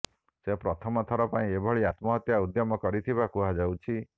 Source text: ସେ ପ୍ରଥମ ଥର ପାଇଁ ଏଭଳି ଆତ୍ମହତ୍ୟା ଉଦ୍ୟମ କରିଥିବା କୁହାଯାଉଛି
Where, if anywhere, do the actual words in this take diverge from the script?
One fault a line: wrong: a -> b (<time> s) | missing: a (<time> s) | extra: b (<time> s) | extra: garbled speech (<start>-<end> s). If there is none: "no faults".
no faults